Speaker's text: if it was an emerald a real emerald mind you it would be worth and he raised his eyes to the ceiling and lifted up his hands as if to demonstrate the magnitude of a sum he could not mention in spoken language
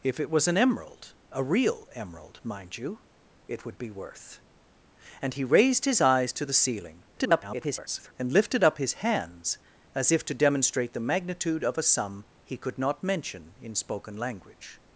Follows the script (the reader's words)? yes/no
no